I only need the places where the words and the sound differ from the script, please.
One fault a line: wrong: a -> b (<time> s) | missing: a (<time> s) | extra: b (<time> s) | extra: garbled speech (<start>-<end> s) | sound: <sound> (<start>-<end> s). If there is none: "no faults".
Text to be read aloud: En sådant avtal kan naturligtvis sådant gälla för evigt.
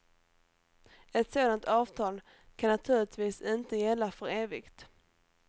wrong: En -> Ett (1.1 s)
wrong: sådant -> inte (3.4 s)